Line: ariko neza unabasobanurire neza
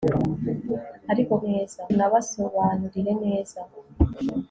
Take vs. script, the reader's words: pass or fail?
pass